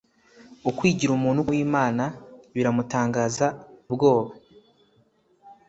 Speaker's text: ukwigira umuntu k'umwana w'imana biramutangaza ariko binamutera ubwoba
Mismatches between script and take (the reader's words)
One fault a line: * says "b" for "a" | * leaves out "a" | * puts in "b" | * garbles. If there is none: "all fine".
* leaves out "k'umwana"
* leaves out "ariko binamutera"